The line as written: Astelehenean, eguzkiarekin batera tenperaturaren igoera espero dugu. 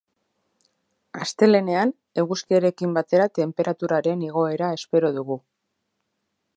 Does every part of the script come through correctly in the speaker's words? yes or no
yes